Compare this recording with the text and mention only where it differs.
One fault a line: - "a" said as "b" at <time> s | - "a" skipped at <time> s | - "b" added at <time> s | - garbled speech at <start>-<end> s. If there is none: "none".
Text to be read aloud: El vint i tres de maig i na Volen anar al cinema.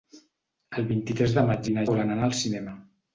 none